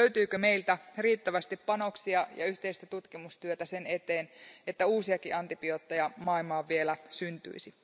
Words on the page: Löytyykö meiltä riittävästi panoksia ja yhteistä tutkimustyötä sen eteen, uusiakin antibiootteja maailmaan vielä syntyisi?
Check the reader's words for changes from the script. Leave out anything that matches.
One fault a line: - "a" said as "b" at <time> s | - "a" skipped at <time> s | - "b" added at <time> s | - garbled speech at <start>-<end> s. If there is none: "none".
- "että" added at 4.7 s